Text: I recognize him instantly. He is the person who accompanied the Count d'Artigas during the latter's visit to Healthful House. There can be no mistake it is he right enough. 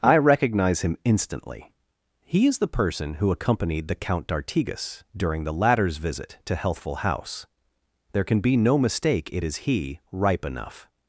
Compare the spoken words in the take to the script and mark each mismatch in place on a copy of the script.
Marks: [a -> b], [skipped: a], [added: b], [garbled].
I recognize him instantly. He is the person who accompanied the Count d'Artigas during the latter's visit to Healthful House. There can be no mistake it is he [right -> ripe] enough.